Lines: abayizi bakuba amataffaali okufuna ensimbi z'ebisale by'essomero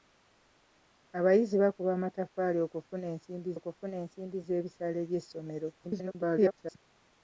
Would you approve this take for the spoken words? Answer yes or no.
no